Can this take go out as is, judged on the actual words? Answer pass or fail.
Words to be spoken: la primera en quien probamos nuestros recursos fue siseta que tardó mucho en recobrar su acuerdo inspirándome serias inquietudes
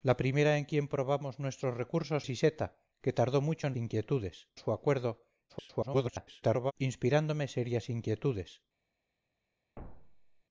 fail